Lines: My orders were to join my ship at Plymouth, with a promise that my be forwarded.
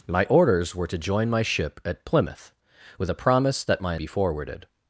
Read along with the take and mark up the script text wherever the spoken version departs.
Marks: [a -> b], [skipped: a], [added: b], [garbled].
My orders were to join my ship at Plymouth, with a promise that my be forwarded.